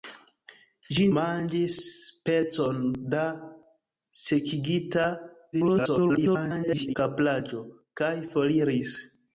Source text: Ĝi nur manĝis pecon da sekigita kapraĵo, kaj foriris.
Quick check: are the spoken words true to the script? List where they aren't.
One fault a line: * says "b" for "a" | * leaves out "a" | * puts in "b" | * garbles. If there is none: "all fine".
* leaves out "nur"
* garbles